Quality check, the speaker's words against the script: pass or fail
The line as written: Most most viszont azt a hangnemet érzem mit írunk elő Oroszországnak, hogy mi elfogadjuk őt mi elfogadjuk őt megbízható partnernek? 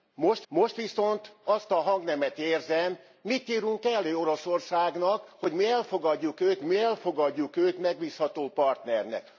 pass